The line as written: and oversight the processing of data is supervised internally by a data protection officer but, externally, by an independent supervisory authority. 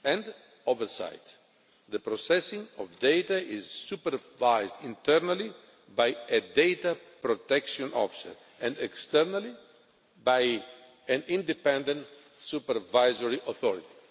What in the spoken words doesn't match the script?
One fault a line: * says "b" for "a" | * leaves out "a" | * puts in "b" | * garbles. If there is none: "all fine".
* says "and" for "but"